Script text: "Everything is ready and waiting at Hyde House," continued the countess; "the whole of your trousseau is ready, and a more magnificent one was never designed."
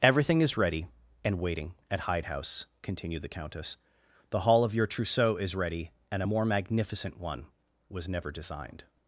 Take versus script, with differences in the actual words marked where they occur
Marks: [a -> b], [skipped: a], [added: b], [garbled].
"Everything is ready and waiting at Hyde House," continued the countess; "the [whole -> hall] of your trousseau is ready, and a more magnificent one was never designed."